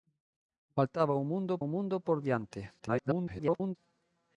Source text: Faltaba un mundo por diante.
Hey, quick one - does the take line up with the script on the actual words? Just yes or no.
no